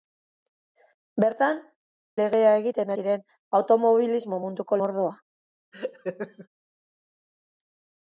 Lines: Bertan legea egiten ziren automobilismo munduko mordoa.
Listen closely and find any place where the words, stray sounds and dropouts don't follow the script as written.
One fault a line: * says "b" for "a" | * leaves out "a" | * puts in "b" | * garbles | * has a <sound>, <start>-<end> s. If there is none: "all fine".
* has a laugh, 5.7-6.5 s